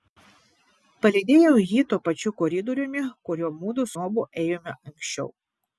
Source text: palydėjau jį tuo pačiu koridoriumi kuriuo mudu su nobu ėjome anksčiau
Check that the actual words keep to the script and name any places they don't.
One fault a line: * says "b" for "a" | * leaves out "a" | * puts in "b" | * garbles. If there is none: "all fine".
* leaves out "su"